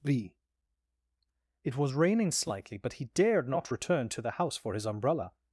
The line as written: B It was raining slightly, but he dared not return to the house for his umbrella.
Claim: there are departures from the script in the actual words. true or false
false